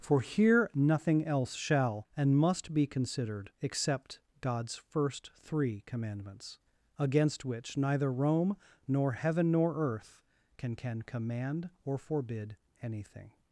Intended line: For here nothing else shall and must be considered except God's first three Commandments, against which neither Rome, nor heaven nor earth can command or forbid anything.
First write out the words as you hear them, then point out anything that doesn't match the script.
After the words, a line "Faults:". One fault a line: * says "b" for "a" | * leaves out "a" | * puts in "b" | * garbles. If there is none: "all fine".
For here nothing else shall and must be considered except God's first three Commandments, against which neither Rome, nor heaven nor earth can can command or forbid anything.
Faults:
* puts in "can"